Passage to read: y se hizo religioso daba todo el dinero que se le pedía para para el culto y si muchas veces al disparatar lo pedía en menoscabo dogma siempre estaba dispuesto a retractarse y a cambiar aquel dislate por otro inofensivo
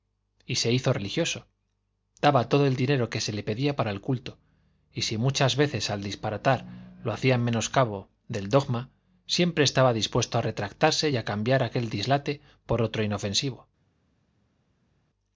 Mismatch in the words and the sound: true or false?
true